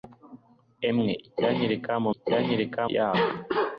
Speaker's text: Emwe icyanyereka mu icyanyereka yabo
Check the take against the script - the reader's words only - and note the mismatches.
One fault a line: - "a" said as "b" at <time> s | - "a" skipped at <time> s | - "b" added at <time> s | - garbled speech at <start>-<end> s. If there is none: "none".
none